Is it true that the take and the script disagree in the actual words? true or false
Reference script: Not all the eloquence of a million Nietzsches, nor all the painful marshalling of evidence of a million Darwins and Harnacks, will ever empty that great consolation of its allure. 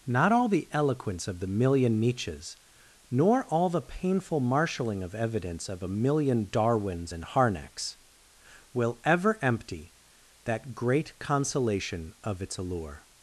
true